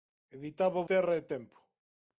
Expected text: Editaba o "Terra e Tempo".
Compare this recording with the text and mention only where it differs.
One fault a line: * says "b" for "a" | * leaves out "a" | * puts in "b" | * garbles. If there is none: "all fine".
all fine